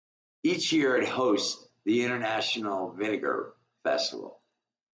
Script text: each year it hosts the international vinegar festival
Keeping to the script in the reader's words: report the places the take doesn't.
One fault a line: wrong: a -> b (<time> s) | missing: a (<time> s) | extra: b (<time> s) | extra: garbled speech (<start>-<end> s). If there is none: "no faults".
no faults